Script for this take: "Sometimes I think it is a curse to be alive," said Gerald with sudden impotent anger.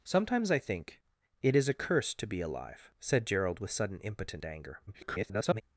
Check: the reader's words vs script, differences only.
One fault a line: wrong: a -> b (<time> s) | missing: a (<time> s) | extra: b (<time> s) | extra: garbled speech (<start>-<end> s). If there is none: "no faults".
extra: garbled speech (4.9-5.6 s)